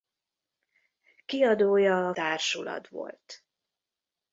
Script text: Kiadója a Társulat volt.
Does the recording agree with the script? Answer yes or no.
yes